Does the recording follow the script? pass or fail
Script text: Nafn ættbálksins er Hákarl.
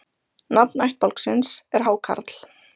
pass